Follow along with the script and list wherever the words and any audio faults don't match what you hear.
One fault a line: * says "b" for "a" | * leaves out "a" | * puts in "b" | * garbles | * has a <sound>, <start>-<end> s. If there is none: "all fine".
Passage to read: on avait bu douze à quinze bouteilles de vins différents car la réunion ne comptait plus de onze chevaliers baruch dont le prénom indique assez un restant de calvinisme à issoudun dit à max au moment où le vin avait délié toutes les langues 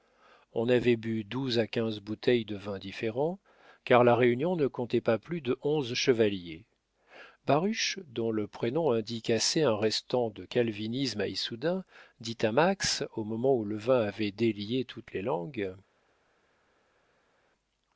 * puts in "pas"